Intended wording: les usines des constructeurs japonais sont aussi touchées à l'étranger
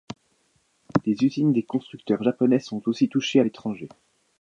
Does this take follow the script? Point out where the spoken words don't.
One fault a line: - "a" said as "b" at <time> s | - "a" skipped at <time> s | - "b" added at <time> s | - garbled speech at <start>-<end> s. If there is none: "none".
none